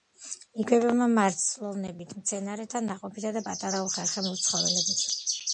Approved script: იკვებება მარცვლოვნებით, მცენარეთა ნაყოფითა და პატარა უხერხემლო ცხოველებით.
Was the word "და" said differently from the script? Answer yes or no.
no